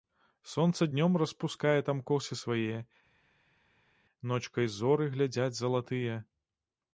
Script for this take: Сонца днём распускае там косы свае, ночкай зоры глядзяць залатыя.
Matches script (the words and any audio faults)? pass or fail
pass